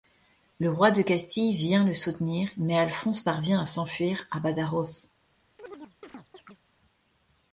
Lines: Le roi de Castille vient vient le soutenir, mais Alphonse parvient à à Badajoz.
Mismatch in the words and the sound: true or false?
true